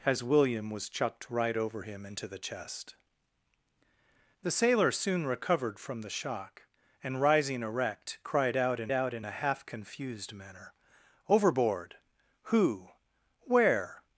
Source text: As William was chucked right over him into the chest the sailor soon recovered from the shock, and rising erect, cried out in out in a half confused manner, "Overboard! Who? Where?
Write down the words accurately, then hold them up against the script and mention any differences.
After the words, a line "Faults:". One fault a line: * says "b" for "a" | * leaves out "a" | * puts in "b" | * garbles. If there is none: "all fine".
As William was chucked right over him into the chest the sailor soon recovered from the shock, and rising erect, cried out in out in a half confused manner, "Overboard! Who? Where?
Faults:
all fine